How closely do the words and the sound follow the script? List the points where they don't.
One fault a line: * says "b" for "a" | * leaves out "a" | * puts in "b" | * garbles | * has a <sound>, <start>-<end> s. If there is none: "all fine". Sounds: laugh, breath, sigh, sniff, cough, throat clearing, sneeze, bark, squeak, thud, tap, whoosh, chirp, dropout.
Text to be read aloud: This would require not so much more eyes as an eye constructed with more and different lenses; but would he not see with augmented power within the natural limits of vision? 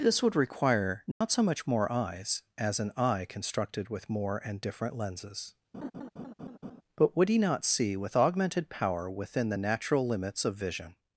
* has a dropout, 1.1-1.2 s
* has a laugh, 5.7-6.8 s